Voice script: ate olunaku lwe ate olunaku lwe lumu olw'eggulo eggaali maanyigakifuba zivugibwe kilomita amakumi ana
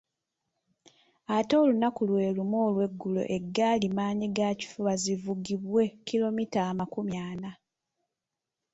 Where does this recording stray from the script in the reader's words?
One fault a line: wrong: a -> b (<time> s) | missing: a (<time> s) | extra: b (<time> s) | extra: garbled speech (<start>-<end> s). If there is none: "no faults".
missing: ate olunaku lwe (2.4 s)